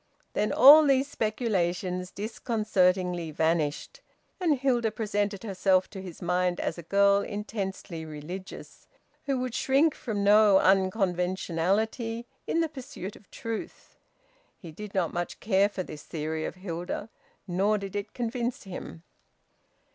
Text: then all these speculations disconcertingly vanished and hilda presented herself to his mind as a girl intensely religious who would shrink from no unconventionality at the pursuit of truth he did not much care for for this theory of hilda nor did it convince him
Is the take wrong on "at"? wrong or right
wrong